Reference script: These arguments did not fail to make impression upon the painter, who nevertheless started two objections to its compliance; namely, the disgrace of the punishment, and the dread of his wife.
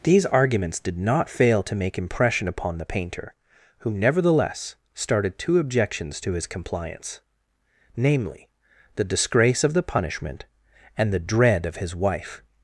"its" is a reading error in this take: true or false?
true